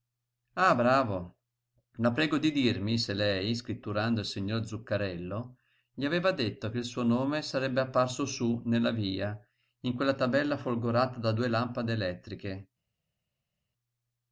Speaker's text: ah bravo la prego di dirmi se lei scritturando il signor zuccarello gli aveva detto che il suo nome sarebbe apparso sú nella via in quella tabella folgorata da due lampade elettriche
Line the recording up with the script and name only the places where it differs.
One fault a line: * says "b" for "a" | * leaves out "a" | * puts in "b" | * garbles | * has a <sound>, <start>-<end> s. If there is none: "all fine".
all fine